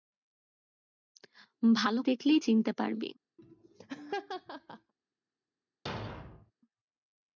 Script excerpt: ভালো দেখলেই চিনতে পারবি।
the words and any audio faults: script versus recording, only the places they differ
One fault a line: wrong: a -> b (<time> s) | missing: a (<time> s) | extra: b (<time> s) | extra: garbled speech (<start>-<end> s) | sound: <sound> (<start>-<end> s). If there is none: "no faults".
sound: laugh (3.4-4.9 s)
sound: thud (5.9-6.5 s)